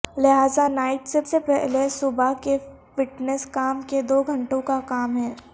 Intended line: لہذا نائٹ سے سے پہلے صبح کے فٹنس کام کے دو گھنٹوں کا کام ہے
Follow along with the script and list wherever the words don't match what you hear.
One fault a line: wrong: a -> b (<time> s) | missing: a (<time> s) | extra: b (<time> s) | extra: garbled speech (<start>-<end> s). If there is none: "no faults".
no faults